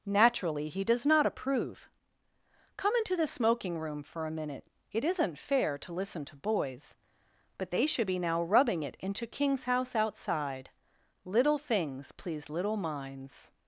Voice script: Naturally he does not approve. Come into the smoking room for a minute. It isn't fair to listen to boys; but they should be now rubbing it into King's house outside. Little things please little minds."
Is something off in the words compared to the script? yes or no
no